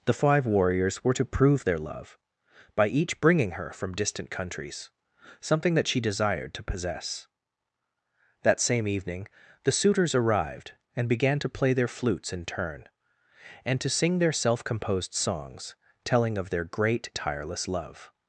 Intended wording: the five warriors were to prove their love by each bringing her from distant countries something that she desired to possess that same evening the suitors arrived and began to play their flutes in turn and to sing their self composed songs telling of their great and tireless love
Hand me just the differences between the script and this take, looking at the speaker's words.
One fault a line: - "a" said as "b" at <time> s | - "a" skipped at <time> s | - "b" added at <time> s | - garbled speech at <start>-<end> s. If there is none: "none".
- "and" skipped at 17.1 s